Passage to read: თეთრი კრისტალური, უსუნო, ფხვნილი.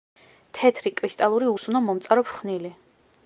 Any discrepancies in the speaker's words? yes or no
yes